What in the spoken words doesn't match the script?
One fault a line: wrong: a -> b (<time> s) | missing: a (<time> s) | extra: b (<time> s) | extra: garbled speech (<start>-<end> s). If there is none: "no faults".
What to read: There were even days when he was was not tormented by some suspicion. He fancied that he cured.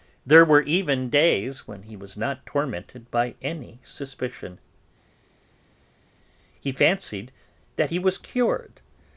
missing: was (2.2 s)
wrong: some -> any (3.4 s)
extra: was (8.0 s)